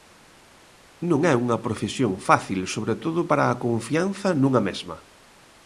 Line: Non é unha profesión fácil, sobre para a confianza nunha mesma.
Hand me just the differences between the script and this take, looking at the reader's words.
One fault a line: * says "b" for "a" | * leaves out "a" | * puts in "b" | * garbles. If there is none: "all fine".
* puts in "todo"